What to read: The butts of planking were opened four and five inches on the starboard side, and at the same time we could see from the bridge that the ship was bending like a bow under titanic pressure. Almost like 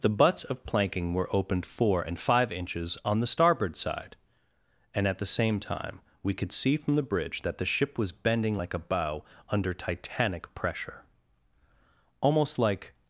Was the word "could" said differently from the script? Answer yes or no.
no